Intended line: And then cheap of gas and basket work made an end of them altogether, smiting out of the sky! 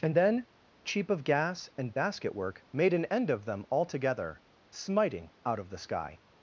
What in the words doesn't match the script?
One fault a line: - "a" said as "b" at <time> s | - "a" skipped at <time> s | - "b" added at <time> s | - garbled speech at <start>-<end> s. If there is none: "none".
none